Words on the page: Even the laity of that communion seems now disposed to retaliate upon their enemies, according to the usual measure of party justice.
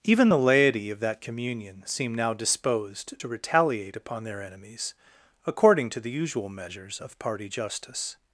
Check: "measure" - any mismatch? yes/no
yes